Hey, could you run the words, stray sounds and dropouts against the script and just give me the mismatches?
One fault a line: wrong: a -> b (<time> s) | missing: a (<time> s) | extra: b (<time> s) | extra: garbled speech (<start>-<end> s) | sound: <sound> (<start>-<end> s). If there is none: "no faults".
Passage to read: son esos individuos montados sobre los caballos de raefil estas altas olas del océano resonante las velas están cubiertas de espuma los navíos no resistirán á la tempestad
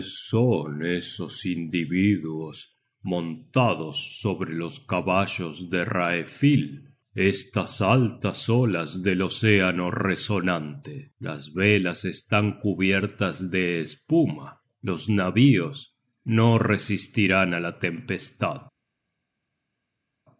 no faults